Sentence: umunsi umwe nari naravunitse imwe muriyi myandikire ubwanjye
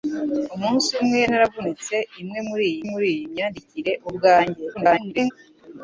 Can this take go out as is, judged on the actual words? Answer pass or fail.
fail